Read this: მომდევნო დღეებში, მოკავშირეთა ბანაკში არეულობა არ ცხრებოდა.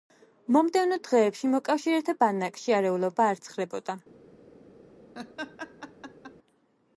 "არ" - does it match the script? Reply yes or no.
yes